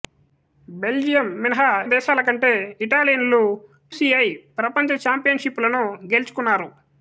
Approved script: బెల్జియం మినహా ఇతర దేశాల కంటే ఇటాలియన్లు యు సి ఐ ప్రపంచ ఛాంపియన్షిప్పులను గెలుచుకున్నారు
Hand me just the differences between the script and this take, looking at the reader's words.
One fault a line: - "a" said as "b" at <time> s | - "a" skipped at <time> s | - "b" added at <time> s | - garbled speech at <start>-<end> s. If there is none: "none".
- "ఇతర" skipped at 1.7 s
- "యు" skipped at 3.4 s